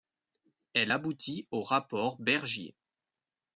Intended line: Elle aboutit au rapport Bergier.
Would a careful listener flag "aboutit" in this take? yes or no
no